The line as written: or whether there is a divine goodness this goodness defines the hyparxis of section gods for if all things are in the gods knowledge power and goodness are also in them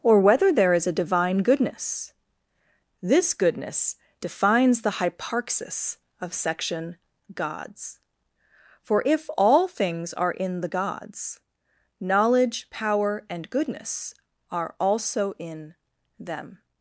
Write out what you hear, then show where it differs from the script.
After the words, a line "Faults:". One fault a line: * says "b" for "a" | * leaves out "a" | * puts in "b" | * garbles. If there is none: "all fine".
or whether there is a divine goodness this goodness defines the hyparxis of section gods for if all things are in the gods knowledge power and goodness are also in them
Faults:
all fine